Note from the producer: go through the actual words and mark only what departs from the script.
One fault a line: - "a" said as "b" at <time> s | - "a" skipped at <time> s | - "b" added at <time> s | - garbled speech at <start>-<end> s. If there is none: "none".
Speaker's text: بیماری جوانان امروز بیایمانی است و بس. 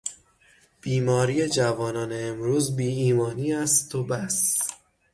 none